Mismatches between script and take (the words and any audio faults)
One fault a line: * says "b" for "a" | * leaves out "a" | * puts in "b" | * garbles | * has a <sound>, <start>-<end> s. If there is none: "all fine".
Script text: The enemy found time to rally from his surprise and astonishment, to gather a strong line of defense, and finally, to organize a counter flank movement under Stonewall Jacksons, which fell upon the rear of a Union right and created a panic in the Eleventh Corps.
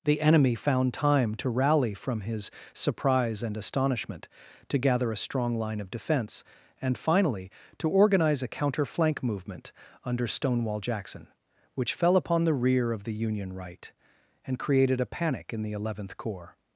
* says "Jackson" for "Jacksons"
* says "the" for "a"